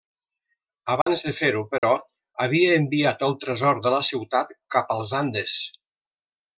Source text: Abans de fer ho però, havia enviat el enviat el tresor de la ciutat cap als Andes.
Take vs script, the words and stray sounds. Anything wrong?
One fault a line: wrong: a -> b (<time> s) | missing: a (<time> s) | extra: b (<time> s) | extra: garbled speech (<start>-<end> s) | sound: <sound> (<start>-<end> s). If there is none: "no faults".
sound: dropout (1.0-1.1 s)
sound: dropout (1.8-1.8 s)
missing: enviat el (3.4 s)